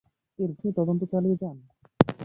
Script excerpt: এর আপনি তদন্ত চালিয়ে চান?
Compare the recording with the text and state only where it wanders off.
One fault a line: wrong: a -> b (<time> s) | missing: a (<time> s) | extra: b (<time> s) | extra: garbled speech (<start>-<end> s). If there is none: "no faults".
no faults